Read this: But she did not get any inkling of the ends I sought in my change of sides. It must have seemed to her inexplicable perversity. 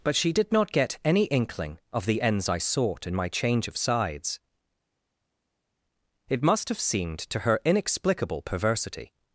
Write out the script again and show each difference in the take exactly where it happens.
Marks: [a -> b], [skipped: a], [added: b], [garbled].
But she did not get any inkling of the ends I sought in my change of sides. It must have seemed to her inexplicable perversity.